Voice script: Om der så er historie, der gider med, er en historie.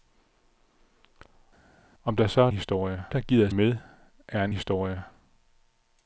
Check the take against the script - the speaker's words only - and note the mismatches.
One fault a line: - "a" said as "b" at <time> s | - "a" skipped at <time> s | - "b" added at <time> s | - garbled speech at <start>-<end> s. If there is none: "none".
none